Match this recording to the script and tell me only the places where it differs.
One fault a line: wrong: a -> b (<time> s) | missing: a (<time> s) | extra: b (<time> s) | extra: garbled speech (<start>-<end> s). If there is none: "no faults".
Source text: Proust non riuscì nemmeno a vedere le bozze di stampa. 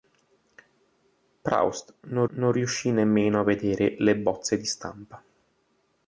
extra: non (2.3 s)